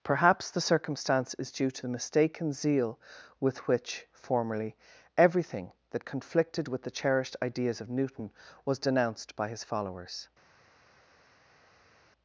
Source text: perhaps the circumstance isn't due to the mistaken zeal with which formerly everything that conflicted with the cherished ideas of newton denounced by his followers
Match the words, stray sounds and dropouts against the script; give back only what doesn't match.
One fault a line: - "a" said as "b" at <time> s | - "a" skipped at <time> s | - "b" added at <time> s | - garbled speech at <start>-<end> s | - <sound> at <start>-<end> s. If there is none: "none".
- "isn't" said as "is" at 1.4 s
- "was" added at 8.6 s